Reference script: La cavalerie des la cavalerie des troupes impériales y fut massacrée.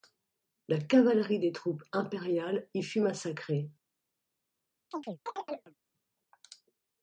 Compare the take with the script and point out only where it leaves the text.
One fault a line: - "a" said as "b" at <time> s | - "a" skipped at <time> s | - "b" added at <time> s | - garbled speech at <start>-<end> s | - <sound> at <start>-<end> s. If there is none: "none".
- "la cavalerie des" skipped at 1.5 s
- chirp at 4.9-5.8 s